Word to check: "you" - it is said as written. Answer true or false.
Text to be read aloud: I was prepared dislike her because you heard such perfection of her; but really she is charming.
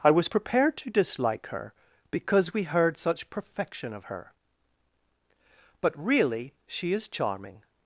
false